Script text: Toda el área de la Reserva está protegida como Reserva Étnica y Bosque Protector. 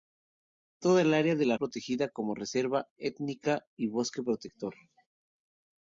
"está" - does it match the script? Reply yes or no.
no